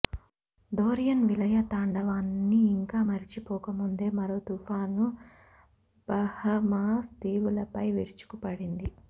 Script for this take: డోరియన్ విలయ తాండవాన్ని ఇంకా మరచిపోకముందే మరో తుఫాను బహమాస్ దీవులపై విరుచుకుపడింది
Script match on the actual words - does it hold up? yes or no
yes